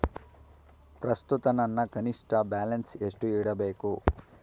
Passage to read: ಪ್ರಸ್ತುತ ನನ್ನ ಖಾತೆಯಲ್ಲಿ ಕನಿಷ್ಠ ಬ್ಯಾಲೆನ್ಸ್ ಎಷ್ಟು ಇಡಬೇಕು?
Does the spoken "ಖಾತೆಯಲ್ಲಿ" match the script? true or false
false